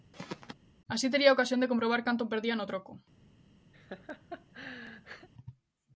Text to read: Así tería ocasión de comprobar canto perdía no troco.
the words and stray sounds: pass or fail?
fail